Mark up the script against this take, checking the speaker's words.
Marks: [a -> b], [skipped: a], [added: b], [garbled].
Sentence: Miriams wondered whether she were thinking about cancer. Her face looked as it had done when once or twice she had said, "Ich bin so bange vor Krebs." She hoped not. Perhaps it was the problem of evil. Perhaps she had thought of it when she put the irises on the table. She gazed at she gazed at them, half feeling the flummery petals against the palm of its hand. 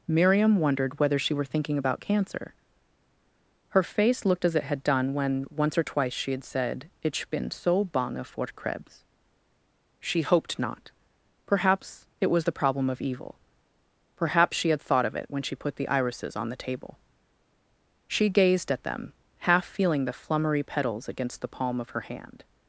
[Miriams -> Miriam] wondered whether she were thinking about cancer. Her face looked as it had done when once or twice she had said, "Ich bin so bange vor Krebs." She hoped not. Perhaps it was the problem of evil. Perhaps she had thought of it when she put the irises on the table. She gazed at [skipped: she gazed at] them, half feeling the flummery petals against the palm of [its -> her] hand.